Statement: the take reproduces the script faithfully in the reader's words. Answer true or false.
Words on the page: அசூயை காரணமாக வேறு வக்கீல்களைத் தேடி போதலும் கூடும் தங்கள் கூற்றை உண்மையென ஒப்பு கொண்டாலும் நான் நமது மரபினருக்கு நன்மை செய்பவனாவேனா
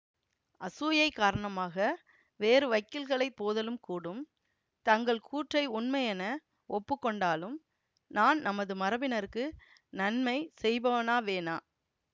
false